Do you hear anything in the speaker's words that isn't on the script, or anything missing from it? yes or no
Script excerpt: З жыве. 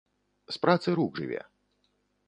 yes